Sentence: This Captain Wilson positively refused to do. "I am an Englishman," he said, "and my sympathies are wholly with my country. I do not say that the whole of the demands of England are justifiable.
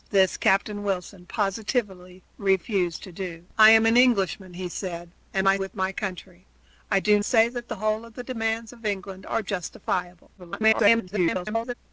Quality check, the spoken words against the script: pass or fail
fail